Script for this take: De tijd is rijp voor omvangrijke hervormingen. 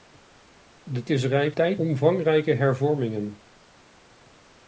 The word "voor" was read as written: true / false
false